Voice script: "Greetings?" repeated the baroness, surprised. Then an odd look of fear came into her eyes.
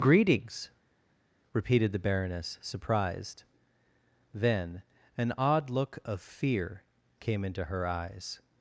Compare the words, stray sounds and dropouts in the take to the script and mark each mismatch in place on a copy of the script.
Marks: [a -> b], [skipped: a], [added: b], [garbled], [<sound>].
"Greetings?" repeated the baroness, surprised. Then an odd look of fear came into her eyes.